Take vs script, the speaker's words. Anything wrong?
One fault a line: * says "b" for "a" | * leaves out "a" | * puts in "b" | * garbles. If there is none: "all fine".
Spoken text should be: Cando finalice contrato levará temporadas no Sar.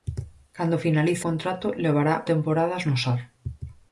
all fine